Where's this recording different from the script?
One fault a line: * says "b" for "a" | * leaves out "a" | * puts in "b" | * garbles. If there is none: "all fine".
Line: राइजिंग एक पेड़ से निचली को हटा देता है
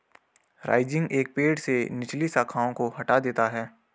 * puts in "शाखाओं"